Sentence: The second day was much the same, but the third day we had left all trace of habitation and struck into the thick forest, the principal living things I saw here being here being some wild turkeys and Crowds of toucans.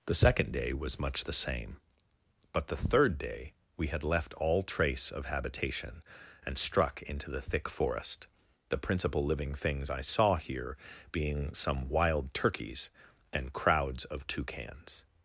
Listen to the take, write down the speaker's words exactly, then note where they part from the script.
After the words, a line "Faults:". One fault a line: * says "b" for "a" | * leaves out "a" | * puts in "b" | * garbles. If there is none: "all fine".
The second day was much the same, but the third day we had left all trace of habitation and struck into the thick forest, the principal living things I saw here being some wild turkeys and Crowds of toucans.
Faults:
* leaves out "here being"